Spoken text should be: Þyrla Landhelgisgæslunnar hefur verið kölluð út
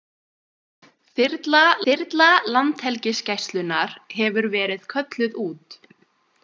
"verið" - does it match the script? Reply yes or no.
yes